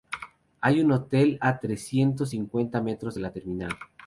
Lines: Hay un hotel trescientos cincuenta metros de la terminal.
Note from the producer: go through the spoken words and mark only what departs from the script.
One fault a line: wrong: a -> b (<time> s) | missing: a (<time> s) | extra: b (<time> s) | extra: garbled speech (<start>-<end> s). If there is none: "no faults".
extra: a (1.4 s)